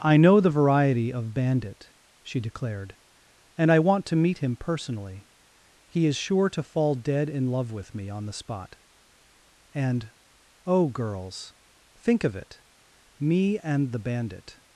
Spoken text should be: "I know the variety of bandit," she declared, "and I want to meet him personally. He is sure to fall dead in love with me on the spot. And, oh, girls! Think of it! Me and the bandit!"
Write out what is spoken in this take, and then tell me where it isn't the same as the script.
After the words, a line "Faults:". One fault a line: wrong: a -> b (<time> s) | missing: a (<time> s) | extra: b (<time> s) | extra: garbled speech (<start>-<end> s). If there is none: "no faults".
"I know the variety of bandit," she declared, "and I want to meet him personally. He is sure to fall dead in love with me on the spot. And, oh, girls! Think of it! Me and the bandit!"
Faults:
no faults